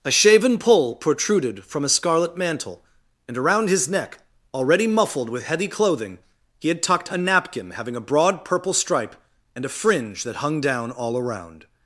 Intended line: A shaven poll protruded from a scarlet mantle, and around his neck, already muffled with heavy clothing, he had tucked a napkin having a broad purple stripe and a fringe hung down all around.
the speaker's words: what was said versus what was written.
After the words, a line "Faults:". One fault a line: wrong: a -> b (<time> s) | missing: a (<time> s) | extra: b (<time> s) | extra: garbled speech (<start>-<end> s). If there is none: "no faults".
A shaven poll protruded from a scarlet mantle, and around his neck, already muffled with heavy clothing, he had tucked a napkin having a broad purple stripe and a fringe that hung down all around.
Faults:
extra: that (10.2 s)